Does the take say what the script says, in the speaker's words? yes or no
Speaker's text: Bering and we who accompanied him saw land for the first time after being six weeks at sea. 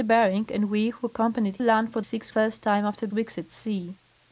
no